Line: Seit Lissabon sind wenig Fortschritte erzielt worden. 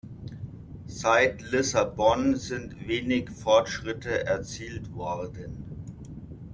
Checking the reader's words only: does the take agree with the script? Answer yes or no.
yes